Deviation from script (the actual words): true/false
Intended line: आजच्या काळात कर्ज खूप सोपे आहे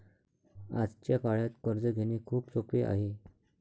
true